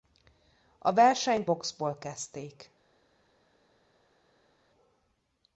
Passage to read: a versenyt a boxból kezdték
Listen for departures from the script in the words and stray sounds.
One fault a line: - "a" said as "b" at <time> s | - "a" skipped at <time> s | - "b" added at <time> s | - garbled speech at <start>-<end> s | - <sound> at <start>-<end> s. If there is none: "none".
- "a" skipped at 1.5 s